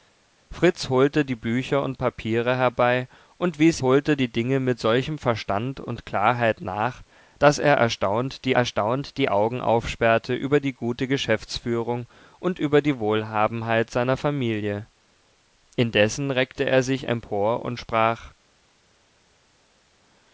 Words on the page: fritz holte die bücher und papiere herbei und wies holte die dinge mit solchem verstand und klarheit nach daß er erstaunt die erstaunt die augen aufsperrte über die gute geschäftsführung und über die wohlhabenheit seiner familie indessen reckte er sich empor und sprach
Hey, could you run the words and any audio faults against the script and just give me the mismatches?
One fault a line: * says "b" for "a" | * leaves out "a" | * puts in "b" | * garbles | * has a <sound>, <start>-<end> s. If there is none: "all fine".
all fine